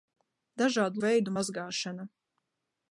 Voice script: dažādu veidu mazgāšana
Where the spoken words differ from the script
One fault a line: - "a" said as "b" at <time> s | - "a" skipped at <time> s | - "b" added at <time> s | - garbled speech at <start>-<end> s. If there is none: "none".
none